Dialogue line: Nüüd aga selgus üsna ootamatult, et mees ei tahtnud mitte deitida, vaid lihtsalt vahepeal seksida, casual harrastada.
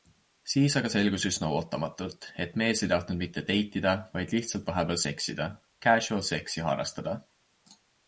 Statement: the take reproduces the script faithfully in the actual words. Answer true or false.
false